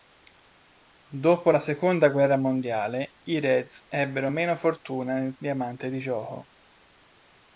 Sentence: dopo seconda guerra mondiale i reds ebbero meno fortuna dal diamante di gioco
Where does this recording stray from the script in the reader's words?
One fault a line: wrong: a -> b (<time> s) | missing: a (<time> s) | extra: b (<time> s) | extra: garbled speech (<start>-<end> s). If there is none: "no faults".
extra: la (1.5 s)
wrong: dal -> nel (5.1 s)